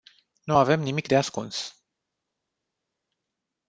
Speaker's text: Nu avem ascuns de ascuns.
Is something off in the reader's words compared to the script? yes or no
yes